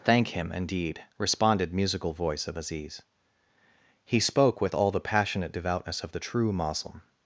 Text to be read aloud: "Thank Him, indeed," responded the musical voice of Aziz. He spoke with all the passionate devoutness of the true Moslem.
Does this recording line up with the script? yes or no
no